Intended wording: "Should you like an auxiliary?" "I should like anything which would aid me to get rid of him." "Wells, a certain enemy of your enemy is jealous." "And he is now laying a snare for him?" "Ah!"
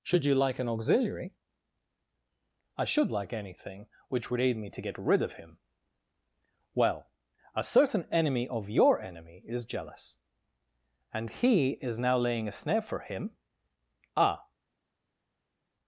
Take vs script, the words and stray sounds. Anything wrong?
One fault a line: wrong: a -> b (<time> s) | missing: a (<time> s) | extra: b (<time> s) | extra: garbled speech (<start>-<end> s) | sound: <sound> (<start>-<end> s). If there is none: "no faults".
wrong: Wells -> Well (6.7 s)